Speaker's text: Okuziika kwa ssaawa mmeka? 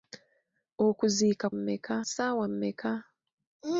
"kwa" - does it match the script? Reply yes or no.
no